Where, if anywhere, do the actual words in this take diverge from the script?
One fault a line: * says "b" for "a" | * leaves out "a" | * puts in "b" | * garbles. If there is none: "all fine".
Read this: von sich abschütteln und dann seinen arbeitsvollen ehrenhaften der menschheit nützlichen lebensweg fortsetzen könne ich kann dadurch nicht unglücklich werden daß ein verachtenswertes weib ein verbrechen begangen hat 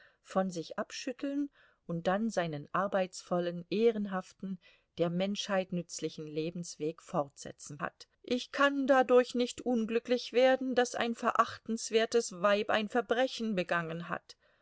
* says "hat" for "könne"